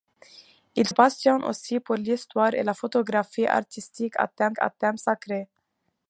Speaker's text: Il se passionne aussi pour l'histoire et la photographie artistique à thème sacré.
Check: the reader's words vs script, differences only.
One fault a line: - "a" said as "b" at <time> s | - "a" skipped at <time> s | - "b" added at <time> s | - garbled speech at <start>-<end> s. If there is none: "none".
- "se" skipped at 0.9 s
- "à thème" added at 4.6 s